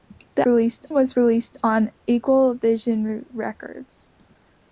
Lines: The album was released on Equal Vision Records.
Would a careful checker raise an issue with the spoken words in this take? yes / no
yes